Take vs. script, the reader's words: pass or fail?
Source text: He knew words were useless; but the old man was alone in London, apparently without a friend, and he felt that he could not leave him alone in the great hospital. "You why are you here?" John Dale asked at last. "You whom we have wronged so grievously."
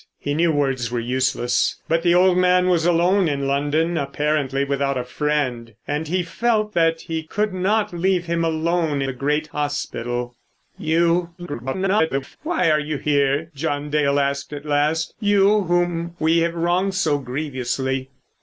fail